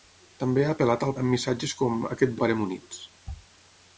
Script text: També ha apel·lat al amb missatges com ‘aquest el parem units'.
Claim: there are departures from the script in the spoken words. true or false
false